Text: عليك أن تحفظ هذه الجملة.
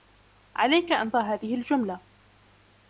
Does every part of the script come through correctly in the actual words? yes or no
no